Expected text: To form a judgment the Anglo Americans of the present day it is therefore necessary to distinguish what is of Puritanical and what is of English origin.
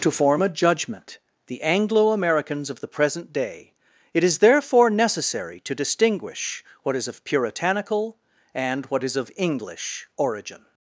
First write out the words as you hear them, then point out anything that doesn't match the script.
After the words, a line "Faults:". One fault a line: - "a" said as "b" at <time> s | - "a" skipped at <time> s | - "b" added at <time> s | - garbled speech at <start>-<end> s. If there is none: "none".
To form a judgment the Anglo Americans of the present day it is therefore necessary to distinguish what is of Puritanical and what is of English origin.
Faults:
none